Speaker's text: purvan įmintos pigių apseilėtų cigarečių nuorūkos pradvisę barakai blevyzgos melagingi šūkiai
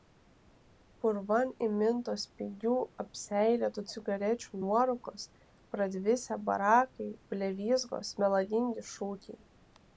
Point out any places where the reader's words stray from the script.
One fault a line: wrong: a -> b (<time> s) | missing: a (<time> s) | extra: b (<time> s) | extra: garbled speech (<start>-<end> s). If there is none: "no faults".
no faults